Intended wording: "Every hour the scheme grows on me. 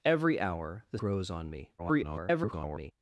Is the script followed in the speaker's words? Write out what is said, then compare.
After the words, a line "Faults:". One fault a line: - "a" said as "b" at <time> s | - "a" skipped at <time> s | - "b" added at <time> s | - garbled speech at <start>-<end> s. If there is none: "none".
"Every hour the grows on me. [garbled]
Faults:
- "scheme" skipped at 1.0 s
- garbled speech at 1.8-2.9 s